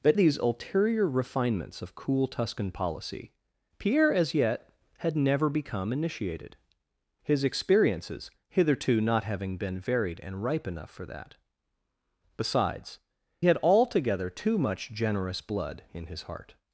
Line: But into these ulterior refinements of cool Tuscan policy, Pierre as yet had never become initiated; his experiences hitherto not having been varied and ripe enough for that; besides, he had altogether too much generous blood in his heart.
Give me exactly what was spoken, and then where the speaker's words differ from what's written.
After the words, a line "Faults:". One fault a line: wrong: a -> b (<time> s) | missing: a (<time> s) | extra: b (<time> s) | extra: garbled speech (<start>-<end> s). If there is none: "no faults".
But these ulterior refinements of cool Tuscan policy, Pierre as yet had never become initiated; his experiences hitherto not having been varied and ripe enough for that; besides, had altogether too much generous blood in his heart.
Faults:
missing: into (0.2 s)
missing: he (13.0 s)